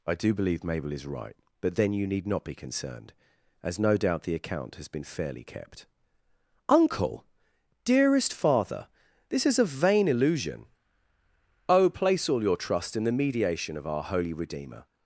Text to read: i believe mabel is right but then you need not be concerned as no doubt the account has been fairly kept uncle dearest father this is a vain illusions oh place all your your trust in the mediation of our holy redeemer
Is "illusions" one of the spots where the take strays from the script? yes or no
yes